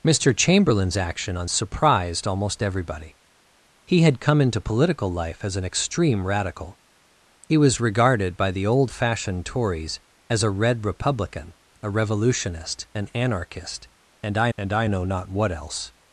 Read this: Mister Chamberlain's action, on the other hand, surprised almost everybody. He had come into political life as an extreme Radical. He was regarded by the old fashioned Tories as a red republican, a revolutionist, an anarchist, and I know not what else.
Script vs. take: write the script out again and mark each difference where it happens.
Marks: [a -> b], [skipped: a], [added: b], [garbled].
Mister Chamberlain's action, on [skipped: the other hand,] surprised almost everybody. He had come into political life as an extreme Radical. He was regarded by the old fashioned Tories as a red republican, a revolutionist, an anarchist, and I [added: and I] know not what else.